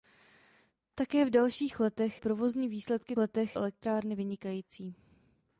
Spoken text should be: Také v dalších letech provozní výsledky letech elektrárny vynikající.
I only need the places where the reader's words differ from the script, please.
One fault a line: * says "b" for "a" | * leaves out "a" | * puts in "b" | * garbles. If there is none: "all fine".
all fine